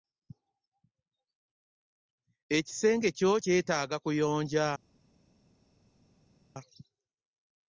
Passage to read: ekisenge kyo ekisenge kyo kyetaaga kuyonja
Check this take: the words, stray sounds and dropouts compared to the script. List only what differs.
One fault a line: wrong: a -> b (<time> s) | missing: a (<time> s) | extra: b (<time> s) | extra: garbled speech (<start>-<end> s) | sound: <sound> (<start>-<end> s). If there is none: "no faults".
missing: ekisenge kyo (3.3 s)